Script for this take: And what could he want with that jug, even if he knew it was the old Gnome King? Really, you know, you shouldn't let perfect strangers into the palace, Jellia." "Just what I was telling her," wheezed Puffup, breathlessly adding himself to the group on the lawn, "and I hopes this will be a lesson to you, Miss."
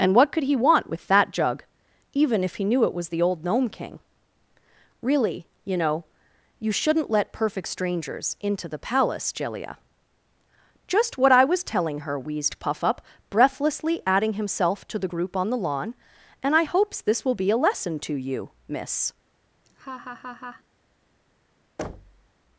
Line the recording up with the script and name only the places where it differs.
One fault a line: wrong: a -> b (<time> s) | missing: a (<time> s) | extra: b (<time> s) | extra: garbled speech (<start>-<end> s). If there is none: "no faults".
no faults